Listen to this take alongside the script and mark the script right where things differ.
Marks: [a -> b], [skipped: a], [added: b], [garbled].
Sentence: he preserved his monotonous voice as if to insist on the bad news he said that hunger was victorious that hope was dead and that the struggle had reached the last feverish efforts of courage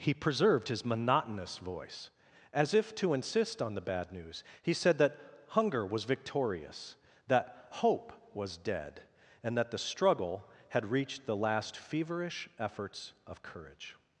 he preserved his monotonous voice as if to insist on the bad news he said that hunger was victorious that hope was dead and that the struggle had reached the last feverish efforts of courage